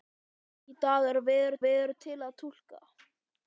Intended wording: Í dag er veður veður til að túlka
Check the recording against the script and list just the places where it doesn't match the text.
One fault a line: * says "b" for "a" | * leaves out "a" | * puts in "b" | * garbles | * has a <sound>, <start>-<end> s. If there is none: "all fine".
all fine